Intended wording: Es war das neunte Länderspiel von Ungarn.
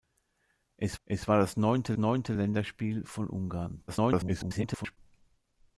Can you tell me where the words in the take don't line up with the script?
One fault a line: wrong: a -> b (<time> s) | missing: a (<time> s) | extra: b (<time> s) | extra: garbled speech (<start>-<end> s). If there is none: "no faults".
extra: es (1.1 s)
extra: neunte (2.0 s)
extra: garbled speech (3.9-5.0 s)